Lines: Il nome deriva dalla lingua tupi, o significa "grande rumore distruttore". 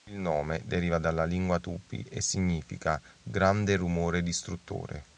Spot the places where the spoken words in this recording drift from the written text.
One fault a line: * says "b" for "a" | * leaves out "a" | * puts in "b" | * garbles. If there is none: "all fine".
* says "e" for "o"